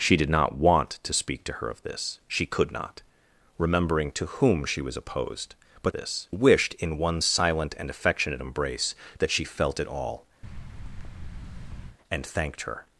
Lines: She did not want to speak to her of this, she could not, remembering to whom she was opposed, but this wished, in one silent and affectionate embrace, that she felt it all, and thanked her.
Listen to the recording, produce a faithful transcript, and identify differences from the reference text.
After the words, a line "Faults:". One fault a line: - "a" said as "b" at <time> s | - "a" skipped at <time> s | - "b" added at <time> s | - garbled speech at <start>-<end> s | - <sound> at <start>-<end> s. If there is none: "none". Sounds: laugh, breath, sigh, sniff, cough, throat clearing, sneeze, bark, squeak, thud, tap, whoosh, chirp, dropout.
She did not want to speak to her of this, she could not, remembering to whom she was opposed, but this wished, in one silent and affectionate embrace, that she felt it all, and thanked her.
Faults:
- thud at 10.4-12.0 s